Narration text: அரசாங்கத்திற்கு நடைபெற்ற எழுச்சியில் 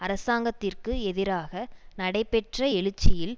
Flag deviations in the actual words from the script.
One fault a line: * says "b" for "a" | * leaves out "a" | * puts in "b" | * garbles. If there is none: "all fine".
* puts in "எதிராக"